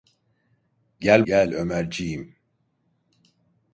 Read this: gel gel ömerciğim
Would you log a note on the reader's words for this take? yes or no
no